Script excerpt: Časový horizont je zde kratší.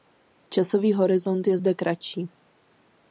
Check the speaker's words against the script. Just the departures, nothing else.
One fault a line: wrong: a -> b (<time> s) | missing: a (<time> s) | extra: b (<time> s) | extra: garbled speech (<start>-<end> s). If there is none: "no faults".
no faults